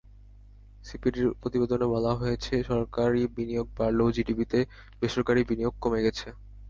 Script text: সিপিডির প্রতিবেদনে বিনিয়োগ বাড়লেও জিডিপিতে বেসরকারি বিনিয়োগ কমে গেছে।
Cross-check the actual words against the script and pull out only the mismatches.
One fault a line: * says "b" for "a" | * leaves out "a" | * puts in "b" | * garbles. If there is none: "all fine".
* puts in "বলা হয়েছে সরকারি"